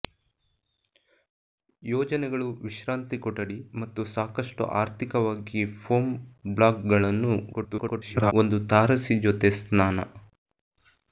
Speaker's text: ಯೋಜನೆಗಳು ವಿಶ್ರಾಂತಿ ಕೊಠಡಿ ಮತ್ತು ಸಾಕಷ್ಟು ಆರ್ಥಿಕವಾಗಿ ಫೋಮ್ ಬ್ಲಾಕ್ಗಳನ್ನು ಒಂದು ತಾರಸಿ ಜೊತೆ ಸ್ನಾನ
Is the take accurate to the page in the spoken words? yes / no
no